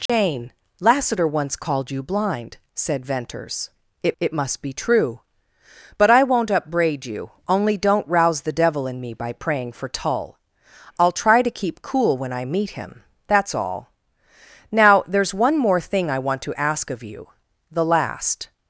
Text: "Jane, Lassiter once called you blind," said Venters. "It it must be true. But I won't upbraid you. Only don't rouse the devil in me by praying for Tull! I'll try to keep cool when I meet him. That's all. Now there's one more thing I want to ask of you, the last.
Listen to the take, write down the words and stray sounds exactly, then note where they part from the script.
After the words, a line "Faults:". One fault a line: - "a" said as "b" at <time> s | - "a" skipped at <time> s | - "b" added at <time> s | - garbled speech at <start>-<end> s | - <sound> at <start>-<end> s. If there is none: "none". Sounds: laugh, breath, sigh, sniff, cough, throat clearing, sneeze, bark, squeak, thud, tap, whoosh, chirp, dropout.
"Jane, Lassiter once called you blind," said Venters. "It it must be true. But I won't upbraid you. Only don't rouse the devil in me by praying for Tull! I'll try to keep cool when I meet him. That's all. Now there's one more thing I want to ask of you, the last.
Faults:
- dropout at 0.1-0.1 s